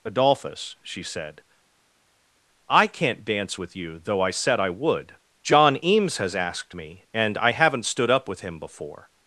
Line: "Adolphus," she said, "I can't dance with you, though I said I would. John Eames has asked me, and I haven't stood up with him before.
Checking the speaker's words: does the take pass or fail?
pass